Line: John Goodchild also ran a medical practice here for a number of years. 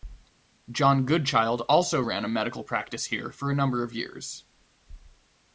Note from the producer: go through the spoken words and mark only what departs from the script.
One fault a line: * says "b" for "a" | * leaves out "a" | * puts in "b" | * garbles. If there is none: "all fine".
all fine